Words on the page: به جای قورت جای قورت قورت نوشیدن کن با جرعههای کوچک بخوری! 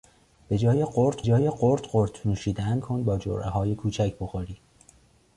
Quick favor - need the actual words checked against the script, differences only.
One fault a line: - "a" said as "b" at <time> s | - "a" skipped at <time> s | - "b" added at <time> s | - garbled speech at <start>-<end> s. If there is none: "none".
none